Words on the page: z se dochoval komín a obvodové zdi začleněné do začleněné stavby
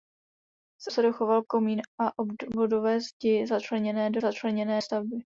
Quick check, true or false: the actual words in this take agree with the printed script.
true